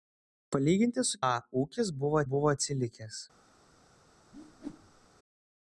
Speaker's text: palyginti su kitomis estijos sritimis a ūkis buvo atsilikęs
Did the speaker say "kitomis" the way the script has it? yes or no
no